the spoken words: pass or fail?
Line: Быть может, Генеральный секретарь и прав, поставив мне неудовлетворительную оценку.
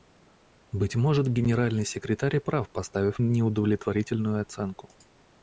fail